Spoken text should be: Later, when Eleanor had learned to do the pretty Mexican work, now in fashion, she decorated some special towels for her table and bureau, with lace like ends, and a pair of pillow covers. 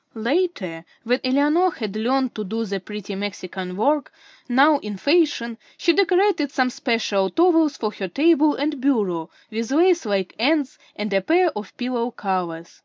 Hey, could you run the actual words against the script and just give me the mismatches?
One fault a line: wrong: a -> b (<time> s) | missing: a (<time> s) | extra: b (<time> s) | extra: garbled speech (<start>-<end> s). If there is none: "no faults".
no faults